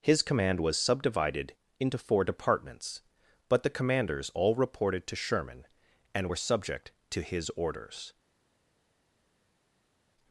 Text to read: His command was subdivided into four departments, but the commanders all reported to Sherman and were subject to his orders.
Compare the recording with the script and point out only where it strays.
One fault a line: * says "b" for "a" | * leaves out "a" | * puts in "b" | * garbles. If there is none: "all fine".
all fine